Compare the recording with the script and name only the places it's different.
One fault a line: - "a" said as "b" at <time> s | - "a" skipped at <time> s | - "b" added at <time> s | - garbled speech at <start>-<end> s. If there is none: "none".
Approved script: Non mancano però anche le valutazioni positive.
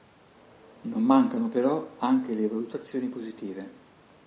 none